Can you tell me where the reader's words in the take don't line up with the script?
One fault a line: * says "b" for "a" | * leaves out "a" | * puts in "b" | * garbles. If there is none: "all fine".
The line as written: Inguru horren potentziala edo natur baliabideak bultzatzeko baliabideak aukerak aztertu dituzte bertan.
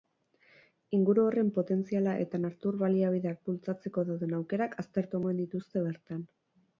* says "eta" for "edo"
* says "dauden" for "baliabideak"
* puts in "omen"